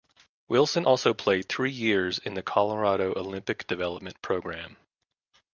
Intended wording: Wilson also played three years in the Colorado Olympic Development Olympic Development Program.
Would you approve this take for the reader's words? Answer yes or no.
no